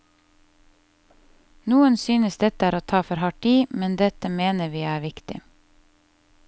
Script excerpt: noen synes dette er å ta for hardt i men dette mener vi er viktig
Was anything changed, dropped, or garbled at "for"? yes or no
no